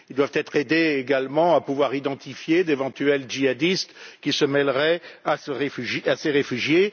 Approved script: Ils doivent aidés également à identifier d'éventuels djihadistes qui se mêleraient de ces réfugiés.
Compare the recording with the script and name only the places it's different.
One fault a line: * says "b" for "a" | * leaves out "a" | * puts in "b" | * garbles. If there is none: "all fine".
* puts in "être"
* puts in "pouvoir"
* says "à" for "de"